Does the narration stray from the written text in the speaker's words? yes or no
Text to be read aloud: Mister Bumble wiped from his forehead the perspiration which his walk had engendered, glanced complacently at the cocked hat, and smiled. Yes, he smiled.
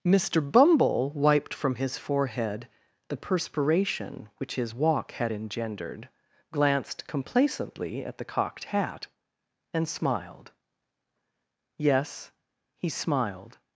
no